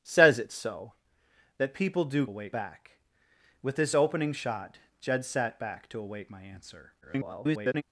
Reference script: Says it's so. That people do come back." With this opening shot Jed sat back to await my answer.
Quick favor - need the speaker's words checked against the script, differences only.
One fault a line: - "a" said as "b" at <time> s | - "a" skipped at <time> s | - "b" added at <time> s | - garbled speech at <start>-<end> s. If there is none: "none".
- "come" said as "await" at 2.2 s
- garbled speech at 7.0-7.8 s